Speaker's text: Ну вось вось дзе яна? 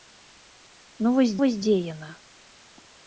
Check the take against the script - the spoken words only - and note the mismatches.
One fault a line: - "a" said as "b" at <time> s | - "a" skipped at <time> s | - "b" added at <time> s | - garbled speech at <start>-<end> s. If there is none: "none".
none